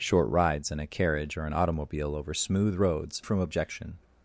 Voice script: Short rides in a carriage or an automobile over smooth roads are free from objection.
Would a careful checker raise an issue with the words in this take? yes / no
yes